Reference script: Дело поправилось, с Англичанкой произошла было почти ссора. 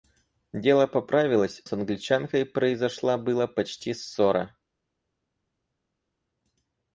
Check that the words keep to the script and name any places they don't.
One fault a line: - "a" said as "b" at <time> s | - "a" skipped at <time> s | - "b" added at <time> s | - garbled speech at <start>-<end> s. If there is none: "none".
none